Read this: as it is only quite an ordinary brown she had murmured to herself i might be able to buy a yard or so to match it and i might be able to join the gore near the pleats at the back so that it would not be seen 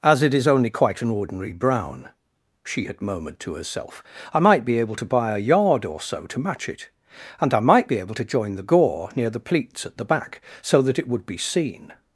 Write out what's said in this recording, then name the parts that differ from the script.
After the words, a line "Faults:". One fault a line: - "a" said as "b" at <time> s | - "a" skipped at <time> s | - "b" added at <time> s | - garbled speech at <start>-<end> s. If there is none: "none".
as it is only quite an ordinary brown she had murmured to herself i might be able to buy a yard or so to match it and i might be able to join the gore near the pleats at the back so that it would be seen
Faults:
- "not" skipped at 11.3 s